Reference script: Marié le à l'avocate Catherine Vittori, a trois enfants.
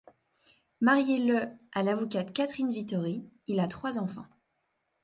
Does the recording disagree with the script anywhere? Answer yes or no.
yes